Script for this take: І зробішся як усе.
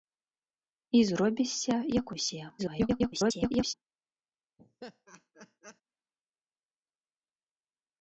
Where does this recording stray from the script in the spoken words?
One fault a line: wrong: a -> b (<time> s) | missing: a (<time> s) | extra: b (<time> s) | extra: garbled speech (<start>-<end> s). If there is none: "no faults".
extra: garbled speech (2.6-3.7 s)